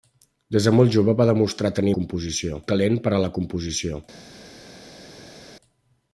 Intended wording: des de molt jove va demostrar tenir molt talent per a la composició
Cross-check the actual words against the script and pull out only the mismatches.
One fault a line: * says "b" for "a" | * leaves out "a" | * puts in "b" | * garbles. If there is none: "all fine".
* says "composició" for "molt"